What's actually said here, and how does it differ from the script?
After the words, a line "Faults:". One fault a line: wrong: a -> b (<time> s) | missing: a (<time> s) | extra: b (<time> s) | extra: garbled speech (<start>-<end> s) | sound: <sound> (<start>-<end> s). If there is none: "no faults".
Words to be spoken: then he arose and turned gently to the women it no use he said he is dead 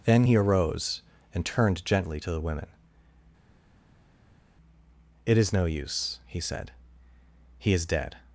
then he arose and turned gently to the women it is no use he said he is dead
Faults:
extra: is (5.4 s)